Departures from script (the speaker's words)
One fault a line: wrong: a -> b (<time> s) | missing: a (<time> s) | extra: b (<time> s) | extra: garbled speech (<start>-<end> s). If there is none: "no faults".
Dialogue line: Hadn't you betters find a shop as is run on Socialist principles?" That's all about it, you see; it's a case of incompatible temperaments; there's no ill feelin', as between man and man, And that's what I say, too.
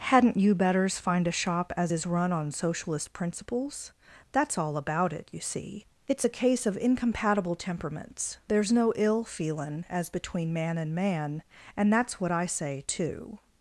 no faults